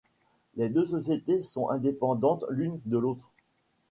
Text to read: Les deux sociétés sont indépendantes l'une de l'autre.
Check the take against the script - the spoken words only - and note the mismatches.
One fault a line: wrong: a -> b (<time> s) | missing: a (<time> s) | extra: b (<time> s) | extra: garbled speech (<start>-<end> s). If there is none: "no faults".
no faults